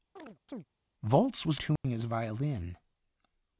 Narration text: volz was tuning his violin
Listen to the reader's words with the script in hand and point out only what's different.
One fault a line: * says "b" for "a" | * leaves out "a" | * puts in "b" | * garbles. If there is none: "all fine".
all fine